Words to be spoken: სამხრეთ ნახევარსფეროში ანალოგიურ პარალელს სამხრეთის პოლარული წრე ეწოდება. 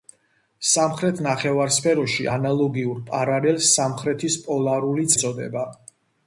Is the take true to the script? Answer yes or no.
no